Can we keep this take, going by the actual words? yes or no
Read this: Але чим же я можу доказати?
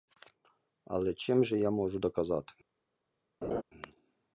yes